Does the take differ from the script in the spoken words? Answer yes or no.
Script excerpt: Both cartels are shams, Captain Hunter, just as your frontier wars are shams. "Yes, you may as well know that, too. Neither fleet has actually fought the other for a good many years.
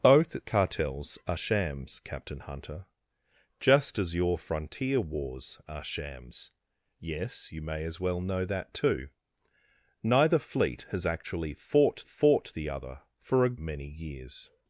yes